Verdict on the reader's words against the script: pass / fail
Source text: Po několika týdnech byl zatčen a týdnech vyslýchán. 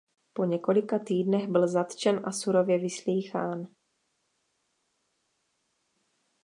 fail